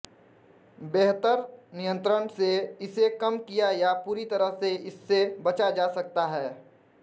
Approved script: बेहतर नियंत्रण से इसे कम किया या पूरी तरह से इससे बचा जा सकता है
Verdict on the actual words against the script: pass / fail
pass